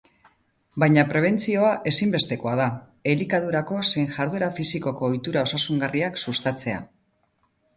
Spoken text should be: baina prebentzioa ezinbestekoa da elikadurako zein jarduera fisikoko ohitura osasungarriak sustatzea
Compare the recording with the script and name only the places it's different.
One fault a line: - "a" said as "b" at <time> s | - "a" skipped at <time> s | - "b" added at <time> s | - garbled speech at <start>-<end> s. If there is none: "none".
none